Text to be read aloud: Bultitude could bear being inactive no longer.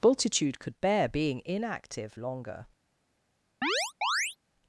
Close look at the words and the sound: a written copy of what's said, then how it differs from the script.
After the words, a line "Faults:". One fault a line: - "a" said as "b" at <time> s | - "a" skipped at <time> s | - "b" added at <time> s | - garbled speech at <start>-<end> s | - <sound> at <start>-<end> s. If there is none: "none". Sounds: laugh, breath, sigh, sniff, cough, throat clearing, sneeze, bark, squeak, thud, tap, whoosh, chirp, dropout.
Bultitude could bear being inactive longer.
Faults:
- "no" skipped at 2.2 s
- chirp at 3.6-4.4 s